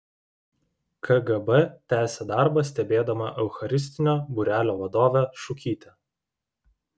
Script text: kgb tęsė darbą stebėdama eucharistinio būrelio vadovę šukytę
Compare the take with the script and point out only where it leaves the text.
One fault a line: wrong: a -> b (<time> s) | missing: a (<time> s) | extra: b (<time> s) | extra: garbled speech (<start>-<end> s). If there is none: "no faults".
no faults